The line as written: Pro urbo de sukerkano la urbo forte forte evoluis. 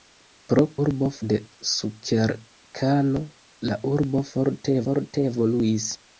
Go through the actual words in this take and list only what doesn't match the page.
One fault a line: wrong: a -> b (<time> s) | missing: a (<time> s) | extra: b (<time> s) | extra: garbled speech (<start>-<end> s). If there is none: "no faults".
no faults